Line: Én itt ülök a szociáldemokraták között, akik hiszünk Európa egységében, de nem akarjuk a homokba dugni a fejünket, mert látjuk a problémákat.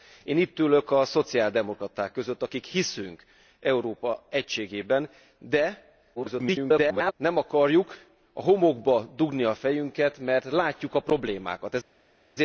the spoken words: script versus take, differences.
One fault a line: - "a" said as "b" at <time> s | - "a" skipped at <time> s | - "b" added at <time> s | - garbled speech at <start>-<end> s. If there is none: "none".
- garbled speech at 6.2-7.1 s